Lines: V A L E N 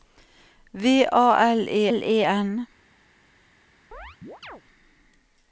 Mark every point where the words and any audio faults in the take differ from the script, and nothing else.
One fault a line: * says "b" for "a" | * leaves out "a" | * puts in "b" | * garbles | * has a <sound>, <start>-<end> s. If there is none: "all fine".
* puts in "L E"
* has a chirp, 3.9-4.6 s